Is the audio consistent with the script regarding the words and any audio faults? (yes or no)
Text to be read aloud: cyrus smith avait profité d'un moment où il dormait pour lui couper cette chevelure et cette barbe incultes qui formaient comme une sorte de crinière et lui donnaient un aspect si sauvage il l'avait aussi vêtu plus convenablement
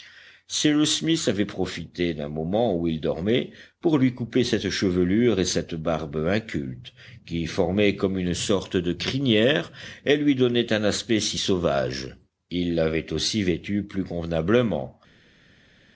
yes